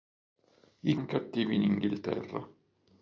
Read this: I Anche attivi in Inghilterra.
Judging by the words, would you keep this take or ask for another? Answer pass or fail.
pass